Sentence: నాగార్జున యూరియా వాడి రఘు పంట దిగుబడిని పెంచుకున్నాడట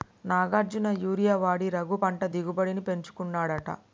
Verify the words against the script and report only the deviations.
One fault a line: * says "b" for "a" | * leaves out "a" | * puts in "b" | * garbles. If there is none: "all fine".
all fine